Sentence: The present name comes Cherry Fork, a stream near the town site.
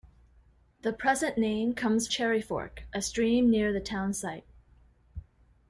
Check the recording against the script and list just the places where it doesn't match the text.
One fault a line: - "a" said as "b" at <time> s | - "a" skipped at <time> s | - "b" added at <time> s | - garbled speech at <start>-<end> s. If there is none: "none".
none